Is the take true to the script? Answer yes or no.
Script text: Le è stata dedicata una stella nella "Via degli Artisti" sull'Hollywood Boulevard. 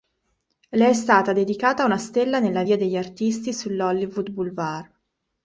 yes